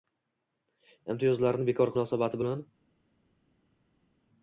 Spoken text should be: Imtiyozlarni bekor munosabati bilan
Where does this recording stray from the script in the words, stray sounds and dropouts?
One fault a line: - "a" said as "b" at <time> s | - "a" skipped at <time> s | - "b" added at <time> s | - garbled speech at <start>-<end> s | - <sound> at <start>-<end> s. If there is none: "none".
none